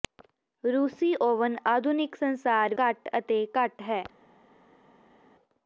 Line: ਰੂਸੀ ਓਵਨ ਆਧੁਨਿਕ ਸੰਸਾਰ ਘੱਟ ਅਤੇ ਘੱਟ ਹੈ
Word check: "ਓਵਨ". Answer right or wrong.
right